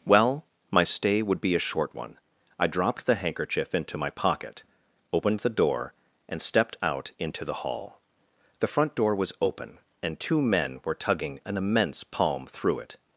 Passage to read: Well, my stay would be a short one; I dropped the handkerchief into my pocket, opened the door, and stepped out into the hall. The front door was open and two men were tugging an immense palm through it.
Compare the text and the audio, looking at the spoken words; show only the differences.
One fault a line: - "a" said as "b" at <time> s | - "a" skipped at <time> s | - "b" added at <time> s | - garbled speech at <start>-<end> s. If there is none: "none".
none